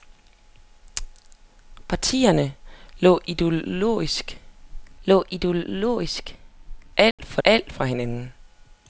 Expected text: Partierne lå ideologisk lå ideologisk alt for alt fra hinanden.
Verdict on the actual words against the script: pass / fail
pass